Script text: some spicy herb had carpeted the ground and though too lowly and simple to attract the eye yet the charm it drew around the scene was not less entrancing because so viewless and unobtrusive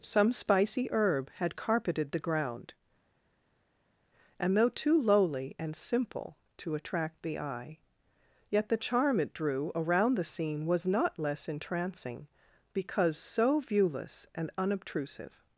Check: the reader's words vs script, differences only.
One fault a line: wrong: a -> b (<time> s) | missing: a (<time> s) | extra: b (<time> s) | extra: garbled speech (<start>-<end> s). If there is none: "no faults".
no faults